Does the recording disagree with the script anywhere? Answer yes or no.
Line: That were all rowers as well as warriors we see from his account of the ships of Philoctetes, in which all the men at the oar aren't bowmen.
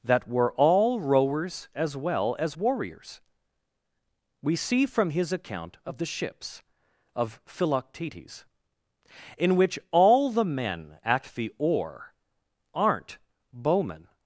no